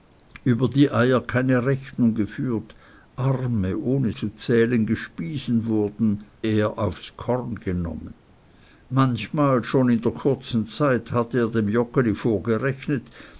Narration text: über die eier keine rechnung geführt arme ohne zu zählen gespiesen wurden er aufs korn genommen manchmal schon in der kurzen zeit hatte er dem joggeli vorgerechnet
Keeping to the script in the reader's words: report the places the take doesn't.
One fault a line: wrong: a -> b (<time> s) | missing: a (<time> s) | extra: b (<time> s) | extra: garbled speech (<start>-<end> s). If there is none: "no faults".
no faults